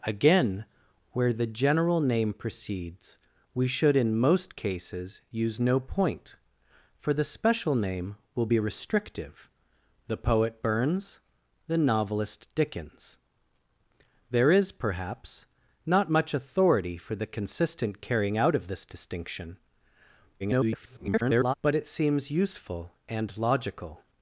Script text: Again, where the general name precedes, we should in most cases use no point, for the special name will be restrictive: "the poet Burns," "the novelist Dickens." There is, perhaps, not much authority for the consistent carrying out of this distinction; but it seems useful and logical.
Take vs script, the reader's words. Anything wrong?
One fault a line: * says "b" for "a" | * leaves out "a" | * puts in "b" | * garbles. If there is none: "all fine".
* garbles